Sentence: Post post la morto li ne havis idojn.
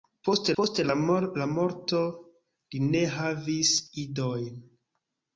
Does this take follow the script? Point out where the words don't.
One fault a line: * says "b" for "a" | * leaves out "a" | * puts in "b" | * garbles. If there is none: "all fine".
all fine